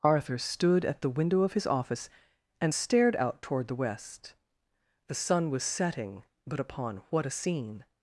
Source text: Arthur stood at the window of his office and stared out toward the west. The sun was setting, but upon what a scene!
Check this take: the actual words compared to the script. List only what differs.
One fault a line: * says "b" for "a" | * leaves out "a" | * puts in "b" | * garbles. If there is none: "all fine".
all fine